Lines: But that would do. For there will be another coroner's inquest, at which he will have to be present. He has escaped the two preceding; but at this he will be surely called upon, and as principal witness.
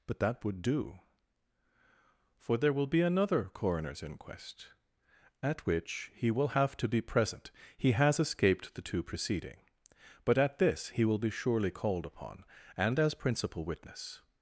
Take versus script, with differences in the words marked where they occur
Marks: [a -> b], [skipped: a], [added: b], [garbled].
But that would do. For there will be another coroner's inquest, at which he will have to be present. He has escaped the two preceding; but at this he will be surely called upon, and as principal witness.